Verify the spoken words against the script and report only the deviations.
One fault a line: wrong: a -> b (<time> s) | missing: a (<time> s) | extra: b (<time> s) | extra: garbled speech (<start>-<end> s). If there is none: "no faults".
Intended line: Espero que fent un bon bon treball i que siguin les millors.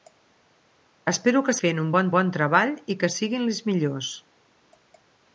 no faults